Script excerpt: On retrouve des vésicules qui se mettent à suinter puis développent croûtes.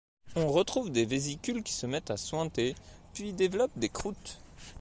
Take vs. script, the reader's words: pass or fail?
fail